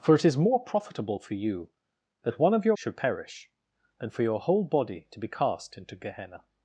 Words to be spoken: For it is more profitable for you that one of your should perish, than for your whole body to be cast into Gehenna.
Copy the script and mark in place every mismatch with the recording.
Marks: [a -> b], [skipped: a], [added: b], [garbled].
For it is more profitable for you that one of your should perish, than for your whole body to be cast into Gehenna.